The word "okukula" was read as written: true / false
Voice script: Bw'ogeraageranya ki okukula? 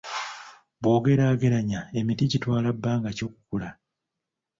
true